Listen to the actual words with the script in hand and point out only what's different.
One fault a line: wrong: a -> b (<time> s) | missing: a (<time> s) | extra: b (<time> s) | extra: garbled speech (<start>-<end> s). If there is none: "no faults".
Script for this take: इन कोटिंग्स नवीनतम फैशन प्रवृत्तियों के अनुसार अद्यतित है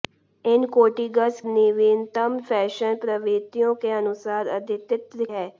no faults